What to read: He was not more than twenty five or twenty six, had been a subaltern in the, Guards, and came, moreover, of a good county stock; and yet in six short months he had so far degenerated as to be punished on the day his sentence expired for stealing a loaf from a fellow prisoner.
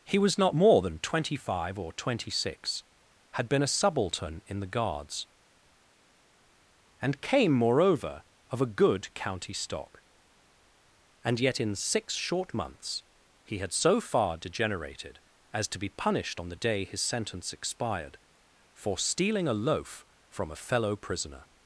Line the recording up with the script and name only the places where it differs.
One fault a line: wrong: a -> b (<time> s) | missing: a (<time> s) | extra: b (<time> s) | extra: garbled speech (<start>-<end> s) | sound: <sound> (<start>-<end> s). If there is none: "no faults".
no faults